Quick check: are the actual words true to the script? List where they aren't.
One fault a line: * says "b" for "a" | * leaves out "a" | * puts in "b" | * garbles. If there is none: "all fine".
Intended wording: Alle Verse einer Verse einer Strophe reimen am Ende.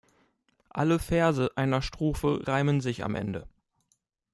* leaves out "Verse einer"
* puts in "sich"